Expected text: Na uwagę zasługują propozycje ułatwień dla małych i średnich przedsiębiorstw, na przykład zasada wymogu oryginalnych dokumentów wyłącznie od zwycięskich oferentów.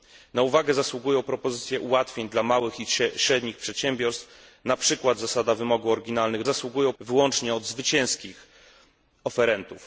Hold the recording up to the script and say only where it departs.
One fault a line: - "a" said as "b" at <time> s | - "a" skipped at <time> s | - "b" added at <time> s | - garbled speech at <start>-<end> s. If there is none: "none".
- "dokumentów" said as "zasługują" at 6.4 s